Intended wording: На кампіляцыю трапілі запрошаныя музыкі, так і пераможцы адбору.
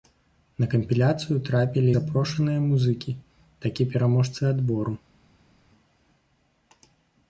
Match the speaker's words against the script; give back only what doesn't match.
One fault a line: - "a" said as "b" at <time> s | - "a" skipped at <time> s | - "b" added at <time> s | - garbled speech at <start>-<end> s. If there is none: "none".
none